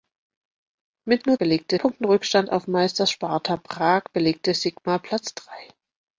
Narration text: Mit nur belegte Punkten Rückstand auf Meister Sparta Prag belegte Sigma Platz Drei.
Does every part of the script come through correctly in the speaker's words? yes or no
yes